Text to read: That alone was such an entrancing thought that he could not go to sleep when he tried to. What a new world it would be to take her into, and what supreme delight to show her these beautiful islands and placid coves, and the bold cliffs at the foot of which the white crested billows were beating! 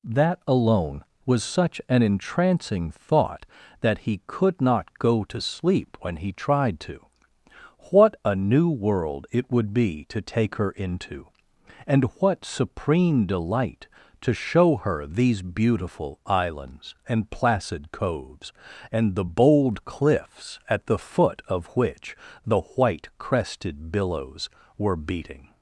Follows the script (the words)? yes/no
yes